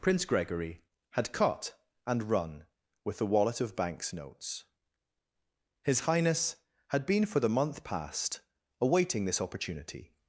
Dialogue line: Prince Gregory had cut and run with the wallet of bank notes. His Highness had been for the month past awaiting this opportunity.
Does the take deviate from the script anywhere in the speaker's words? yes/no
yes